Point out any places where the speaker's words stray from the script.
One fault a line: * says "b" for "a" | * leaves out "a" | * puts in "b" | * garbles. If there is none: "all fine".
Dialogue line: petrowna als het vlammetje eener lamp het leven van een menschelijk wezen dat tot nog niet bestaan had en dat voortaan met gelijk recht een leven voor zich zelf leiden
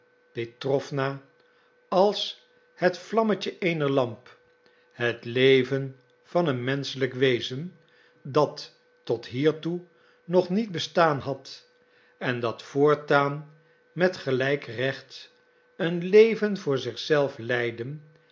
* puts in "hiertoe"